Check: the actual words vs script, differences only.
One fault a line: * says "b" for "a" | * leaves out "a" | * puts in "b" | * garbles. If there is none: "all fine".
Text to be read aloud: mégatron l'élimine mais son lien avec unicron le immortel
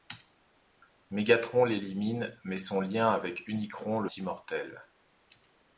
all fine